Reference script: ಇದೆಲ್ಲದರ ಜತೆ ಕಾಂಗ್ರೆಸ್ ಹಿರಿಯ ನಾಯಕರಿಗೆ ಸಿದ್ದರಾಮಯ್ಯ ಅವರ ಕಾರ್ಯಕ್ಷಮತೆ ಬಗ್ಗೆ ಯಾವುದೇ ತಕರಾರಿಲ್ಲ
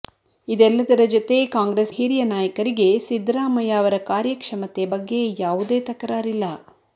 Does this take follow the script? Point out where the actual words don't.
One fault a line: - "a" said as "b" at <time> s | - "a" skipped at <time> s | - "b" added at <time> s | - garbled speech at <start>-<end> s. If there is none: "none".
none